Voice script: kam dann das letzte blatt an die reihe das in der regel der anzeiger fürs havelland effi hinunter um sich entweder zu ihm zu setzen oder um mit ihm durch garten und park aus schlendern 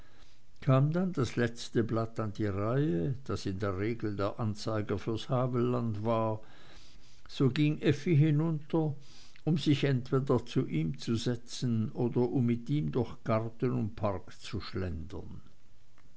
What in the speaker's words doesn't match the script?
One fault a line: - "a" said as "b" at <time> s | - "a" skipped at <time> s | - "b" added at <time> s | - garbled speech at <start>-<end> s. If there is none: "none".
- "war so ging" added at 6.0 s
- "aus" said as "zu" at 14.4 s